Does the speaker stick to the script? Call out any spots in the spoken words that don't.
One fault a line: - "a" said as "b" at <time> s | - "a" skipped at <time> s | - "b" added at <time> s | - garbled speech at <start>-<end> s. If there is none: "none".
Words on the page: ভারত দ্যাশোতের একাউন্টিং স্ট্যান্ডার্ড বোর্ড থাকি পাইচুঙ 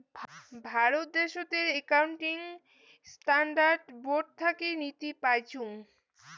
- "নীতি" added at 4.8 s